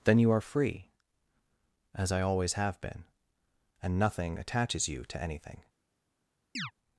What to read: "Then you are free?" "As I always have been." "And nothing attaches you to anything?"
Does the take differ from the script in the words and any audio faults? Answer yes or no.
yes